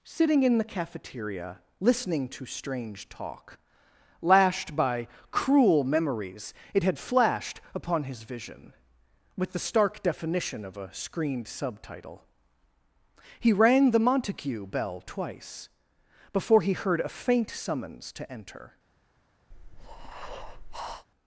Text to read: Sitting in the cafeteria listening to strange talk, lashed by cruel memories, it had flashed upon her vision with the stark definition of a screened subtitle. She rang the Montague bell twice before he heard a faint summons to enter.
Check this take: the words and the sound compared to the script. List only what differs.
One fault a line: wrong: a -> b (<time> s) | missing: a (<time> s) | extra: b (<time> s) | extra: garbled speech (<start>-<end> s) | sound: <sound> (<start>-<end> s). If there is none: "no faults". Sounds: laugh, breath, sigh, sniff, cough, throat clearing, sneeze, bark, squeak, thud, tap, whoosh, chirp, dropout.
wrong: her -> his (8.1 s)
wrong: She -> He (13.4 s)
sound: breath (19.5-21.1 s)